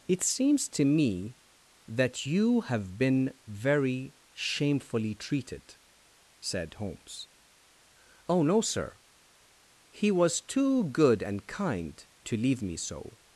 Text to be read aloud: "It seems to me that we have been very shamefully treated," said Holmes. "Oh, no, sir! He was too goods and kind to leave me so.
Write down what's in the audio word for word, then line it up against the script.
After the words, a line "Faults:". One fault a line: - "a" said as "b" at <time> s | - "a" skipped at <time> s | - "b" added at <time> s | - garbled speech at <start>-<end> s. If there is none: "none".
"It seems to me that you have been very shamefully treated," said Holmes. "Oh, no, sir! He was too good and kind to leave me so.
Faults:
- "we" said as "you" at 2.2 s
- "goods" said as "good" at 10.8 s